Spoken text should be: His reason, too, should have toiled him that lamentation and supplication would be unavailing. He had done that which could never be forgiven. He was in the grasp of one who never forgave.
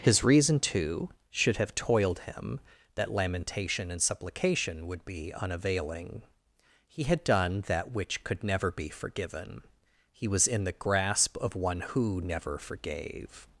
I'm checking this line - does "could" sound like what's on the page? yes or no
yes